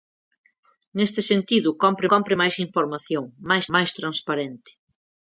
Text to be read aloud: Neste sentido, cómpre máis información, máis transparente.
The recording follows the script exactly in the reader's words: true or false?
false